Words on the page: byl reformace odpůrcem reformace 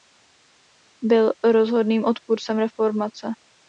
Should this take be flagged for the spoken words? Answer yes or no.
yes